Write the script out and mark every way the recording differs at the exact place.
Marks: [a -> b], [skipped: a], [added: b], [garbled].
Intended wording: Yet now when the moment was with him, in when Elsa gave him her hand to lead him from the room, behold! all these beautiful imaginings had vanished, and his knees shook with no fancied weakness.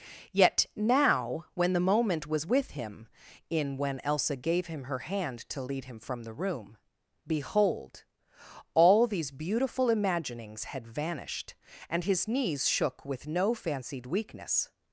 Yet now when the moment was with him, in when Elsa gave him her hand to lead him from the room, behold! all these beautiful imaginings had vanished, and his knees shook with no fancied weakness.